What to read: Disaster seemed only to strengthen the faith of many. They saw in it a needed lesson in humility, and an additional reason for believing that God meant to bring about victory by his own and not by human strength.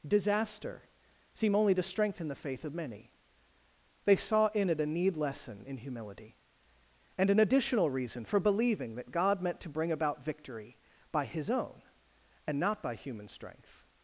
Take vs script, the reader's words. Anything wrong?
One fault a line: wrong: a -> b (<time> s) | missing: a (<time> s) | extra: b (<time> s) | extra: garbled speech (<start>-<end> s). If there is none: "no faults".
wrong: seemed -> seem (1.3 s)
wrong: needed -> need (4.8 s)